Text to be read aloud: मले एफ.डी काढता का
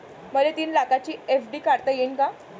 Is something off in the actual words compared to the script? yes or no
yes